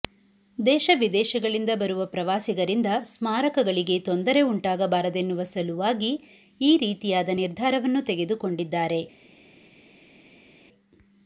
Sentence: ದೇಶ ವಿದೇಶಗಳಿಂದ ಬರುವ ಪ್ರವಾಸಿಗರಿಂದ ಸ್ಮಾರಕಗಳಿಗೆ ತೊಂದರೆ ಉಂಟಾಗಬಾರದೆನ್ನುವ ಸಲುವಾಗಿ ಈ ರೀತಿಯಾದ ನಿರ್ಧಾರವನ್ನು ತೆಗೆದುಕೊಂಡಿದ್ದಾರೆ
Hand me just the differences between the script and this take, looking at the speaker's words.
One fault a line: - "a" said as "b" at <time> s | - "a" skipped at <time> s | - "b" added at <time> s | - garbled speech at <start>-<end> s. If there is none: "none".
none